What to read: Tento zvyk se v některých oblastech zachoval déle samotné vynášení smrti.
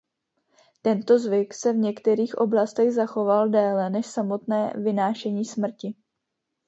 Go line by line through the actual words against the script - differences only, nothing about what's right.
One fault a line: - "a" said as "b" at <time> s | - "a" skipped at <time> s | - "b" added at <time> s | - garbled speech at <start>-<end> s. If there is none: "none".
- "než" added at 3.9 s